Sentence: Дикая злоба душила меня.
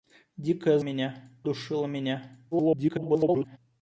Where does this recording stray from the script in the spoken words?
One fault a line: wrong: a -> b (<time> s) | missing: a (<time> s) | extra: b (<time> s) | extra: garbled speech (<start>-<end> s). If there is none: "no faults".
wrong: злоба -> меня (0.8 s)
extra: garbled speech (2.5-3.6 s)